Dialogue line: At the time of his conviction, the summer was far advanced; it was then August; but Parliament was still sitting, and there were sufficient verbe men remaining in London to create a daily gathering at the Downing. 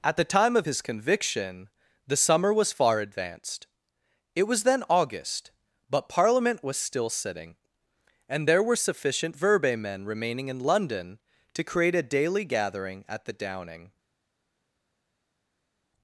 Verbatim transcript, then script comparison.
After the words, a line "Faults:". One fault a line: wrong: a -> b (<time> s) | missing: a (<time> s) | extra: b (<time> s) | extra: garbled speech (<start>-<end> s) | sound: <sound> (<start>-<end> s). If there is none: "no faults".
At the time of his conviction, the summer was far advanced; it was then August; but Parliament was still sitting, and there were sufficient verbe men remaining in London to create a daily gathering at the Downing.
Faults:
no faults